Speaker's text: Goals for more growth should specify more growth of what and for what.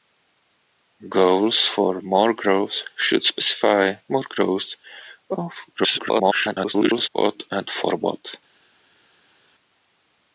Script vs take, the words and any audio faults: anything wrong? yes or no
yes